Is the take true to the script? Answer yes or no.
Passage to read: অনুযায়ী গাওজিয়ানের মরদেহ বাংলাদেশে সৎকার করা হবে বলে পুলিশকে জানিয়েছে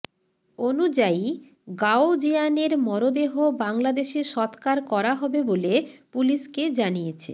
yes